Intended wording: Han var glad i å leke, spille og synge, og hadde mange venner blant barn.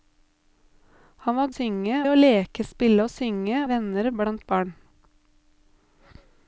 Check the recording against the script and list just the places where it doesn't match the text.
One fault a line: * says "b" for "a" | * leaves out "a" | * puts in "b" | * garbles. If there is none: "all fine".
* says "synge" for "glad"
* leaves out "og hadde mange"